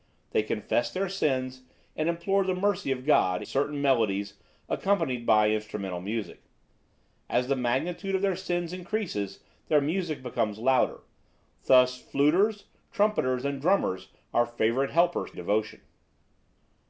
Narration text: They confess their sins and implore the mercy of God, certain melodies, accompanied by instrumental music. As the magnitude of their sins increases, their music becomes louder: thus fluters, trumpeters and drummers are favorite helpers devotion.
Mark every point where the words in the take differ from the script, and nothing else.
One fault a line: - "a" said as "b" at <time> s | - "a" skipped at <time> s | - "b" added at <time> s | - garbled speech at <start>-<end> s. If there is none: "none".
none